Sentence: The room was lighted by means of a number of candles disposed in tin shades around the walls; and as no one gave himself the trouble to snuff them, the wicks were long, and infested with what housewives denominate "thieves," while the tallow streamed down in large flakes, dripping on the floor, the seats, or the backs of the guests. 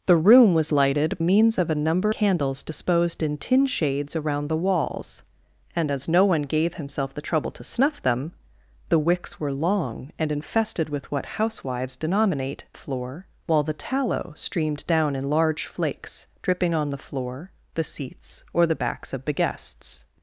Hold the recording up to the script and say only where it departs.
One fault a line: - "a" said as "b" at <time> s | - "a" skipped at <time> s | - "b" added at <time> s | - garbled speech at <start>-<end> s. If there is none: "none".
- "by" skipped at 1.2 s
- "of" skipped at 2.1 s
- "thieves" said as "floor" at 12.7 s